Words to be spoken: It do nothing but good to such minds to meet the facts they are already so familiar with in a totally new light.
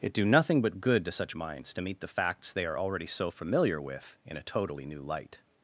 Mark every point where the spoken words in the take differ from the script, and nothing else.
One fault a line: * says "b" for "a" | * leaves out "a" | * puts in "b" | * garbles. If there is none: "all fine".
all fine